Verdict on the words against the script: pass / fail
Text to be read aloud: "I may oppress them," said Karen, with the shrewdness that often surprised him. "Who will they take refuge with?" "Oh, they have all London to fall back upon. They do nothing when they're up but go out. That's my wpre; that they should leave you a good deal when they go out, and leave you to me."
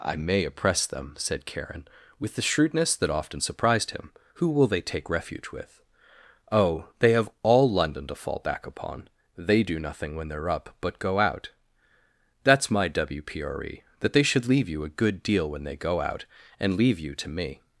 pass